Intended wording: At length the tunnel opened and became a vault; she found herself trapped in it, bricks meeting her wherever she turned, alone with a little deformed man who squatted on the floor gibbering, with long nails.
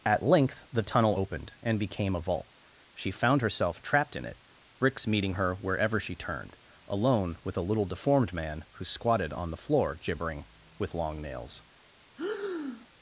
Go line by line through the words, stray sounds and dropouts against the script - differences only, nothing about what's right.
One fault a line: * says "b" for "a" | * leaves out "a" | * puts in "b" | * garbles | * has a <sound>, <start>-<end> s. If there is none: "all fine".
* has a breath, 12.2-12.9 s